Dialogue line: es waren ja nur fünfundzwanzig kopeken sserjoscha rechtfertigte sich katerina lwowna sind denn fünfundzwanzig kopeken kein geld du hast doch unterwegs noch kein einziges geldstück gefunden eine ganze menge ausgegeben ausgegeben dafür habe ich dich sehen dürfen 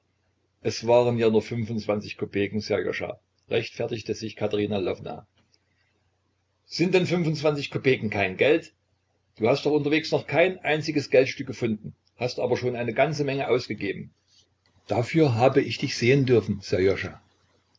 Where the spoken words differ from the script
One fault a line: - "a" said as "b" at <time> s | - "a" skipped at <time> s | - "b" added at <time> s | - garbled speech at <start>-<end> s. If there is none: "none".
- "hast aber schon" added at 12.2 s
- "ausgegeben" skipped at 14.1 s